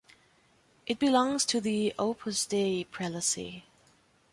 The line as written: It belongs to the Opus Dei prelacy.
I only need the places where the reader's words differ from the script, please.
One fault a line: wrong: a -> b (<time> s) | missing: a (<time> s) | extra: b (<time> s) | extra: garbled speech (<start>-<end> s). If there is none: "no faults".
no faults